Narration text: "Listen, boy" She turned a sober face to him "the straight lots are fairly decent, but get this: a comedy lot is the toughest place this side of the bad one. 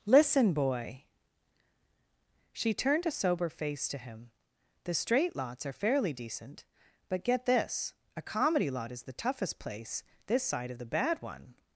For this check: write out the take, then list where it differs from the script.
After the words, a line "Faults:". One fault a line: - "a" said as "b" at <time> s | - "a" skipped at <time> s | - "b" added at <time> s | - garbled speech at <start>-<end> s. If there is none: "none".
"Listen, boy" She turned a sober face to him "the straight lots are fairly decent, but get this: a comedy lot is the toughest place this side of the bad one.
Faults:
none